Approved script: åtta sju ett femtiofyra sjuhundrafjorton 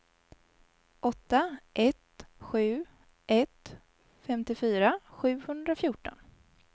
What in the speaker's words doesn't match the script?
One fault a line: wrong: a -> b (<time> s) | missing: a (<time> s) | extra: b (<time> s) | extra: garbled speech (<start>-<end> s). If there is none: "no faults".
extra: ett (1.7 s)